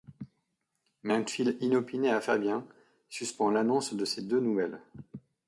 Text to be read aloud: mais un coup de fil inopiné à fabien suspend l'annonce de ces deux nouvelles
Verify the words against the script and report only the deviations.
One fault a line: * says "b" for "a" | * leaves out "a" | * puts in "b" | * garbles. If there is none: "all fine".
* leaves out "coup"